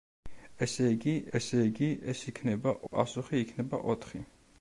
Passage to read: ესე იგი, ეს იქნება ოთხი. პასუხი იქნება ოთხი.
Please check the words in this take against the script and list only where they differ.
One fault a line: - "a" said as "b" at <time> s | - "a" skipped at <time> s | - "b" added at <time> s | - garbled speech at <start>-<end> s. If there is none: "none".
- "ესე იგი" added at 1.4 s
- "ოთხი" skipped at 2.7 s